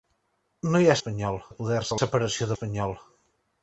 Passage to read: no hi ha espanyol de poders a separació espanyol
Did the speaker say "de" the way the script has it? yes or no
yes